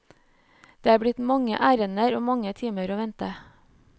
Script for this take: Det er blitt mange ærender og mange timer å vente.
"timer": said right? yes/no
yes